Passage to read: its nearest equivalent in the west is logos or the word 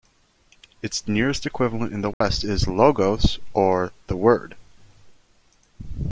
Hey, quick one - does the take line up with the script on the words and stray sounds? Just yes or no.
no